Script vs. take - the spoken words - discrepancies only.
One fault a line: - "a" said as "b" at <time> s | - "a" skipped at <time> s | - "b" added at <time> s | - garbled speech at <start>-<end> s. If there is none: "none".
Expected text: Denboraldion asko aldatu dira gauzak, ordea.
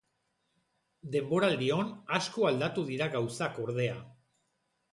none